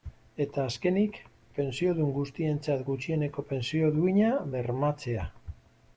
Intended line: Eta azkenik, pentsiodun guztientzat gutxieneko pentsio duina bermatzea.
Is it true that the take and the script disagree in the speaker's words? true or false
false